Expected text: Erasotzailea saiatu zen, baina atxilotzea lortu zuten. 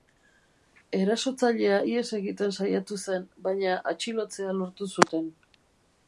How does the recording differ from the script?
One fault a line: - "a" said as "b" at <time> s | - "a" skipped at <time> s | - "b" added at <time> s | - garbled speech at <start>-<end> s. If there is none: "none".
- "ihes egiten" added at 1.9 s